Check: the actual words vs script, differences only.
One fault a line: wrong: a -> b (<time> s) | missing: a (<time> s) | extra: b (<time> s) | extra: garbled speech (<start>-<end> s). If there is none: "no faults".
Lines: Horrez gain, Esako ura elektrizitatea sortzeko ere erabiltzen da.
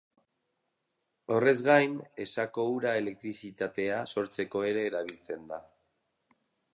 no faults